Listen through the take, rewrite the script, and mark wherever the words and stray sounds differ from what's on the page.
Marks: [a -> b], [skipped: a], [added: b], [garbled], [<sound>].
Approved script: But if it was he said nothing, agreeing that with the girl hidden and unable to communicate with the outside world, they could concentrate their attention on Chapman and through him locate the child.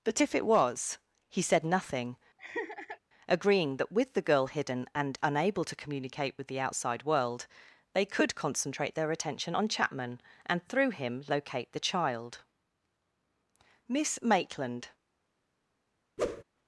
But if it was he said nothing, [laugh] agreeing that with the girl hidden and unable to communicate with the outside world, they could concentrate their attention on Chapman and through him locate the child. [added: Miss Maitland] [whoosh]